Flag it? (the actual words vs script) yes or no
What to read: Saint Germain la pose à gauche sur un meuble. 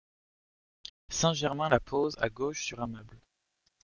no